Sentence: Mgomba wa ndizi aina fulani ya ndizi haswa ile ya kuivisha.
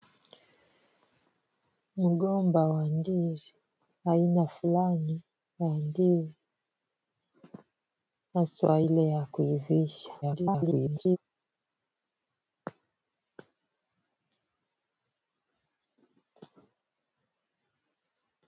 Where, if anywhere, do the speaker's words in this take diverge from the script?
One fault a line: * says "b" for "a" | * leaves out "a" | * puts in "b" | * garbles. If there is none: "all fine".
* garbles